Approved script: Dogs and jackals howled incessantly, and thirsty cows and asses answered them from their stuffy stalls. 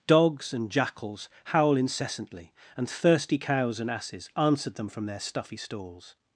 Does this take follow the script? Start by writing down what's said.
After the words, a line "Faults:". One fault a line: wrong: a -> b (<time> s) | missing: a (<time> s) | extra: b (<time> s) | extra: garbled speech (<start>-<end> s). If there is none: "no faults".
Dogs and jackals howl incessantly, and thirsty cows and asses answered them from their stuffy stalls.
Faults:
wrong: howled -> howl (1.4 s)